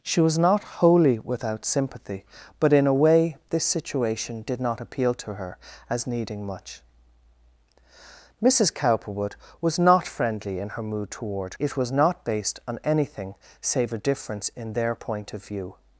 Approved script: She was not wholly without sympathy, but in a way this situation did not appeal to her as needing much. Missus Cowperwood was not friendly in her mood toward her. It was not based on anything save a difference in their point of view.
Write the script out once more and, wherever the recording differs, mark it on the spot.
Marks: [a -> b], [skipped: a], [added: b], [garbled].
She was not wholly without sympathy, but in a way this situation did not appeal to her as needing much. Missus Cowperwood was not friendly in her mood toward [skipped: her.] It was not based on anything save a difference in their point of view.